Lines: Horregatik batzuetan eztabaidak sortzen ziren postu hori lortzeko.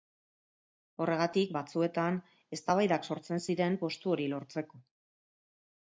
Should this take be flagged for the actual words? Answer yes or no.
no